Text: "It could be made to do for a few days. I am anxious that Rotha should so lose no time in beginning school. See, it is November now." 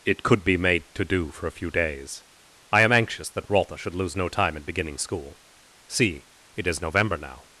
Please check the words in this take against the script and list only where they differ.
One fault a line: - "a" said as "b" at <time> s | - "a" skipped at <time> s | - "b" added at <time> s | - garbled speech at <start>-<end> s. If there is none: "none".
- "so" skipped at 4.0 s